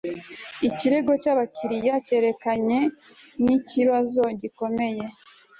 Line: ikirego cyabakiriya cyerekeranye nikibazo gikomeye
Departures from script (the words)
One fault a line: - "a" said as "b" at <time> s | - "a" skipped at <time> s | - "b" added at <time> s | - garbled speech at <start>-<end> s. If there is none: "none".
none